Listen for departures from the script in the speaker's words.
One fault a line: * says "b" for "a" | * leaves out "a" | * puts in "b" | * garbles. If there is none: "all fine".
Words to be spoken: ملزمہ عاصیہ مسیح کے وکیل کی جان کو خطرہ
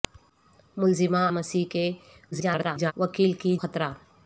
* leaves out "عاصیہ"
* garbles
* leaves out "جان کو"